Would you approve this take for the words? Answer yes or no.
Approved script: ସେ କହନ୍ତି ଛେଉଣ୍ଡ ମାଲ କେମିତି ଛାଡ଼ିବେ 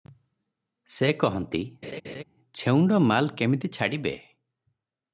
yes